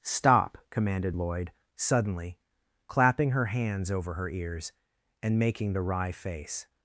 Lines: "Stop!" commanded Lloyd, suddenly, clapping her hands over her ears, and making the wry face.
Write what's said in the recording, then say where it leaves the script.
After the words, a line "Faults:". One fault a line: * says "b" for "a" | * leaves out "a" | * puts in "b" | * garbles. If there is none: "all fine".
"Stop!" commanded Lloyd, suddenly, clapping her hands over her ears, and making the wry face.
Faults:
all fine